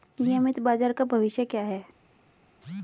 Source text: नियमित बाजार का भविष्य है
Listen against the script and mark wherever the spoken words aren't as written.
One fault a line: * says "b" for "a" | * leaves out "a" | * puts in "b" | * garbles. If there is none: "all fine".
* puts in "क्या"